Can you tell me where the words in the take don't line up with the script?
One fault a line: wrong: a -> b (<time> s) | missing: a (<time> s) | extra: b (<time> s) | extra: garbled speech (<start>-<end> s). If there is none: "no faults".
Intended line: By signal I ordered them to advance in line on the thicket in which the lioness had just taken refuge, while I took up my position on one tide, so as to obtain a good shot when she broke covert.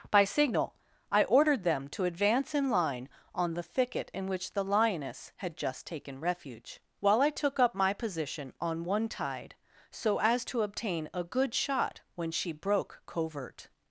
no faults